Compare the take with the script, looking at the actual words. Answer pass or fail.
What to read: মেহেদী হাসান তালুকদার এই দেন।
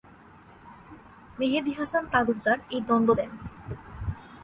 fail